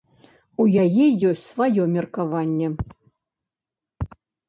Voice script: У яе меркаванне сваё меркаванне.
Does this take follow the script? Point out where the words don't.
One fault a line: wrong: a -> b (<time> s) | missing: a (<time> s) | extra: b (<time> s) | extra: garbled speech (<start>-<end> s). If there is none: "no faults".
wrong: меркаванне -> ёсць (1.3 s)